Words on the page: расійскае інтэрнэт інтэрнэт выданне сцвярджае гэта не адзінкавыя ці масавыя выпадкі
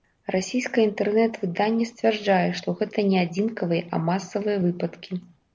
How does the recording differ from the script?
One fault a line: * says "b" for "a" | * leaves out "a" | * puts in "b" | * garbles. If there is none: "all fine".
* leaves out "інтэрнэт"
* puts in "што"
* says "а" for "ці"